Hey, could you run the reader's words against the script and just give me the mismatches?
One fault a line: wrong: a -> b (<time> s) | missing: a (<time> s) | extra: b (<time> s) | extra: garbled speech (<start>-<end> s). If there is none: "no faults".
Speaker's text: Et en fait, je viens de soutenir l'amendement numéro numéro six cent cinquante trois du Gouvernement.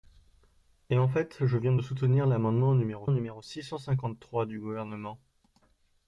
no faults